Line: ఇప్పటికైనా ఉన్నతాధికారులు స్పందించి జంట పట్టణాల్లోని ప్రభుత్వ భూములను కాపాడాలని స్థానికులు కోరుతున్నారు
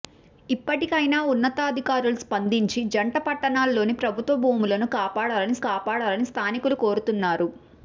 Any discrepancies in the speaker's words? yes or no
yes